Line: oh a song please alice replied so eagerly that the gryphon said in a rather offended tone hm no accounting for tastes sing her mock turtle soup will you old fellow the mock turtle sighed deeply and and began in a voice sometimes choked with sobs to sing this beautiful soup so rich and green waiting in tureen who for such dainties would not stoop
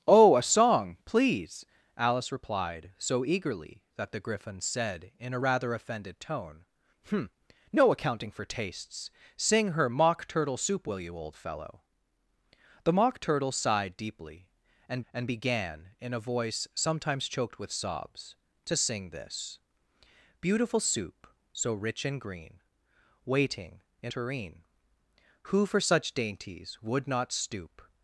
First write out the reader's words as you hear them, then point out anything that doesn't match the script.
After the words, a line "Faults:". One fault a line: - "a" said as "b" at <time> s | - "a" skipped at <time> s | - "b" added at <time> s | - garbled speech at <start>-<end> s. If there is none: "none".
oh a song please alice replied so eagerly that the gryphon said in a rather offended tone hm no accounting for tastes sing her mock turtle soup will you old fellow the mock turtle sighed deeply and and began in a voice sometimes choked with sobs to sing this beautiful soup so rich and green waiting in tureen who for such dainties would not stoop
Faults:
none